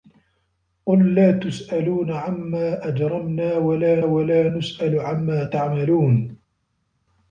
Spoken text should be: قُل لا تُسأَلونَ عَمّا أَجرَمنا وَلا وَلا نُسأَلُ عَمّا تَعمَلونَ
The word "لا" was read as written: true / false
true